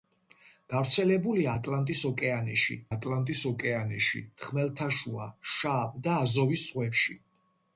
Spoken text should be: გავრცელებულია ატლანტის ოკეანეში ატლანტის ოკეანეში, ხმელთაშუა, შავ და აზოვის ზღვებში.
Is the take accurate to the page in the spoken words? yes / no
yes